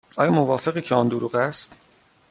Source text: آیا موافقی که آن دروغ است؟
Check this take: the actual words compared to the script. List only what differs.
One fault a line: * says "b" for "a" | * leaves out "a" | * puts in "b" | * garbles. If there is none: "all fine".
all fine